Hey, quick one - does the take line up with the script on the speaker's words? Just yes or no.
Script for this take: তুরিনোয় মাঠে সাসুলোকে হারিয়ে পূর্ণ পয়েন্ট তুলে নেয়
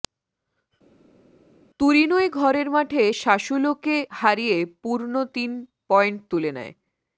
no